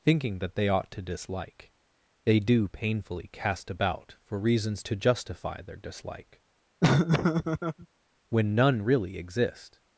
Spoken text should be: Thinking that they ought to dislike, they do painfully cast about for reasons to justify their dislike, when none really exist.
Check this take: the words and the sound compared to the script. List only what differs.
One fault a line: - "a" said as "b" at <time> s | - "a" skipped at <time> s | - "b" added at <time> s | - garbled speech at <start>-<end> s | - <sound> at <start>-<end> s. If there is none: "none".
- laugh at 6.8-7.9 s